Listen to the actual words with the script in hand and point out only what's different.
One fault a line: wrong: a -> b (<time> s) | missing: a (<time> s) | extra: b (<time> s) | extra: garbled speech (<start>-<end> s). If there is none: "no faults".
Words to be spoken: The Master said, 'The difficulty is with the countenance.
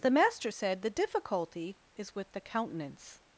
no faults